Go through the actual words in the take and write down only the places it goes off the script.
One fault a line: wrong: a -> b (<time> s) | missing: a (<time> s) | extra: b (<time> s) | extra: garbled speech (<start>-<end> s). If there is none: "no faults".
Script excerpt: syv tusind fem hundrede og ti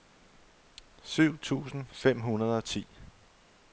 no faults